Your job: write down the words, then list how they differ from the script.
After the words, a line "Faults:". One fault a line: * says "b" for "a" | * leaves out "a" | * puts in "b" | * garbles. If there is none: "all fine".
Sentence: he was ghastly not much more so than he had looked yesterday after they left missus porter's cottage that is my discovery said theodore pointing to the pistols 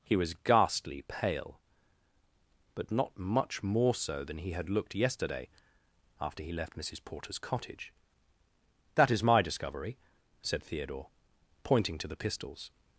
he was ghastly pale but not much more so than he had looked yesterday after he left missus porter's cottage that is my discovery said theodore pointing to the pistols
Faults:
* puts in "pale but"
* says "he" for "they"